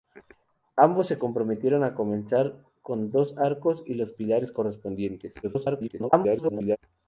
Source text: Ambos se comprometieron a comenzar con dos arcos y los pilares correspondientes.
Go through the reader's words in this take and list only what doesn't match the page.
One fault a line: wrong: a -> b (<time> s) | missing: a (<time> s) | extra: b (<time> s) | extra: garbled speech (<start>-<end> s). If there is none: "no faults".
extra: garbled speech (5.4-6.8 s)